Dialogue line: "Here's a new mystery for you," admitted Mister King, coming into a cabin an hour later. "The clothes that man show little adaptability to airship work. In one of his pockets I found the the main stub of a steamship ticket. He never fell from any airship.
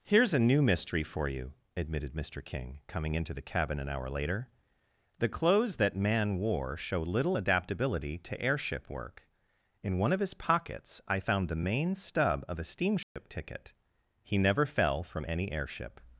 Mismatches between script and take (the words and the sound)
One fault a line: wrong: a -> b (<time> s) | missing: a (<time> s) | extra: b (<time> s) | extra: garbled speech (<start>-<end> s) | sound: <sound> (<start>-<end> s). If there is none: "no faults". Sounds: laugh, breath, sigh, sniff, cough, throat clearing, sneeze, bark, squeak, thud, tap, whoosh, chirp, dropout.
wrong: a -> the (3.3 s)
extra: wore (6.4 s)
missing: the (11.7 s)
sound: dropout (13.0-13.2 s)